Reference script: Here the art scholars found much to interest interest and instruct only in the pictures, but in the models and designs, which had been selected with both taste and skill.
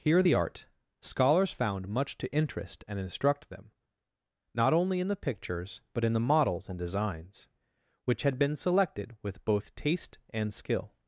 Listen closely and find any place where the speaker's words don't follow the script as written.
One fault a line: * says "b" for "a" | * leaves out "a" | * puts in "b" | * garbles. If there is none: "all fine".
* leaves out "interest"
* puts in "them not"